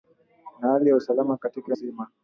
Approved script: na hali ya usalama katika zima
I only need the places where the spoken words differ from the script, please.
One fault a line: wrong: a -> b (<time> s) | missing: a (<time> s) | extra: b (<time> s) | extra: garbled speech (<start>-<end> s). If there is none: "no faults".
no faults